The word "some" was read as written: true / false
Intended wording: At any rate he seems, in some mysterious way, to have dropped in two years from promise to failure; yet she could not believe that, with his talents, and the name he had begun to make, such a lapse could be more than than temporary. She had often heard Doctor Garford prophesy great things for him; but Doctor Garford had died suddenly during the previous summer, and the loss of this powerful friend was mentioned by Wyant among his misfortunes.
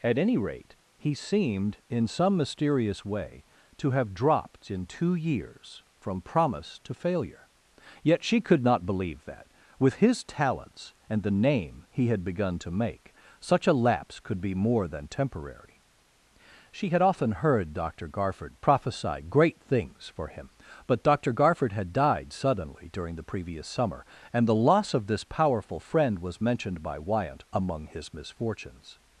true